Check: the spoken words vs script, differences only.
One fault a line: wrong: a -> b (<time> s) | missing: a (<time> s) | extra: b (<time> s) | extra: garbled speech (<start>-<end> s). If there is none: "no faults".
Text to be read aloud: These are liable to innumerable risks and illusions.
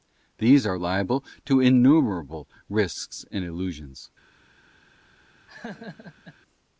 no faults